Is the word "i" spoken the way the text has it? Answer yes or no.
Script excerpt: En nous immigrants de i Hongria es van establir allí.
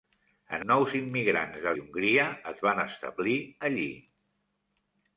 yes